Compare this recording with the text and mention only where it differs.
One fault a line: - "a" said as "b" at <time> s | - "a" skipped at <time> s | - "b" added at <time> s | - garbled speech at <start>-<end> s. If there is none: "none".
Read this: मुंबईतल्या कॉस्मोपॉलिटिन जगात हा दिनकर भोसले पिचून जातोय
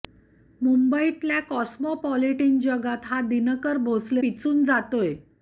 none